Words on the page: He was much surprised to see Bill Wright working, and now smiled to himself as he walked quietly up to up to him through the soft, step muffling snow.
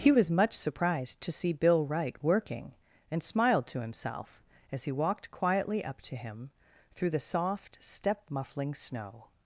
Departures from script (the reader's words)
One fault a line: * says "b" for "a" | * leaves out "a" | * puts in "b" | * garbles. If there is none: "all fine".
* leaves out "now"
* leaves out "up to"